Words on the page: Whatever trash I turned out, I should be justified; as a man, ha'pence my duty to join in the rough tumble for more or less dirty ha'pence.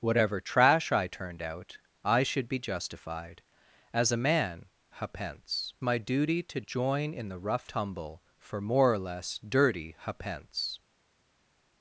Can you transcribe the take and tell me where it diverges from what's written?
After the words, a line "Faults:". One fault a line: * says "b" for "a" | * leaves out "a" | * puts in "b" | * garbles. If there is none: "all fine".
Whatever trash I turned out, I should be justified; as a man, ha'pence my duty to join in the rough tumble for more or less dirty ha'pence.
Faults:
all fine